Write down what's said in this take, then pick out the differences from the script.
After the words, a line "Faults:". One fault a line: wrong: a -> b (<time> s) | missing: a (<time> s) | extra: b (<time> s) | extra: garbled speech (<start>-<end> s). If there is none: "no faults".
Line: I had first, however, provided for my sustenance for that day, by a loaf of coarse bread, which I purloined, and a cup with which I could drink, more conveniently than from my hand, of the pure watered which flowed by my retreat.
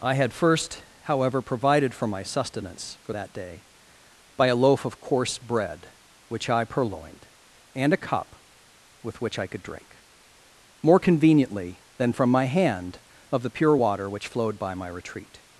I had first, however, provided for my sustenance for that day, by a loaf of coarse bread, which I purloined, and a cup with which I could drink, more conveniently than from my hand, of the pure water which flowed by my retreat.
Faults:
wrong: watered -> water (13.7 s)